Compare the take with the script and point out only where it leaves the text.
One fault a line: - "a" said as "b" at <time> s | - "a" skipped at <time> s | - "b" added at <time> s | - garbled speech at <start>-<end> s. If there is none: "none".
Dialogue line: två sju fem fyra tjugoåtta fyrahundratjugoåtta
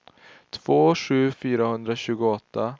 - "fem fyra tjugoåtta" skipped at 1.3 s